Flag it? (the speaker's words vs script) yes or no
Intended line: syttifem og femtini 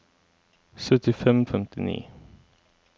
no